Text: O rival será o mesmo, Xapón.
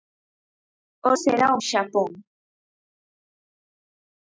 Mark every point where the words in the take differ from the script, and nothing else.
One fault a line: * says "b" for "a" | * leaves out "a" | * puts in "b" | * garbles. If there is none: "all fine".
* leaves out "rival"
* leaves out "mesmo"